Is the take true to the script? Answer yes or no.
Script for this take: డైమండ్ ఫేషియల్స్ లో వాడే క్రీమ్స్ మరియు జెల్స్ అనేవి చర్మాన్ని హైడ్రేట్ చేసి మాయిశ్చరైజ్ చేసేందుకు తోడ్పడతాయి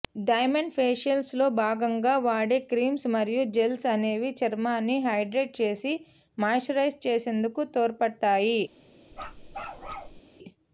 no